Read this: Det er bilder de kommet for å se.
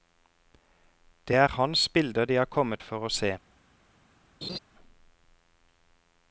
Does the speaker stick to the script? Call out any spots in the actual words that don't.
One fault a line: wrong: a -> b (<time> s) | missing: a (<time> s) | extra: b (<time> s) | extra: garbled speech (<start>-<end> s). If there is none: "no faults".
extra: hans (1.5 s)
extra: har (2.3 s)